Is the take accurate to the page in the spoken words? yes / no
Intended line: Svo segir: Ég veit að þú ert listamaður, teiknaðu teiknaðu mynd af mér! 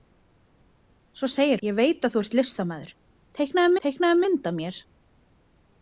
yes